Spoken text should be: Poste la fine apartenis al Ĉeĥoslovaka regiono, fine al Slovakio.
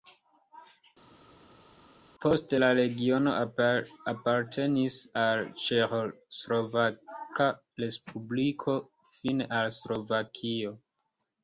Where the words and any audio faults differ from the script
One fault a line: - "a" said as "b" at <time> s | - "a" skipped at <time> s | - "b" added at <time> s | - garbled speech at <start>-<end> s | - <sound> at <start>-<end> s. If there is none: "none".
- "fine" said as "regiono" at 2.8 s
- "regiono" said as "respubliko" at 7.9 s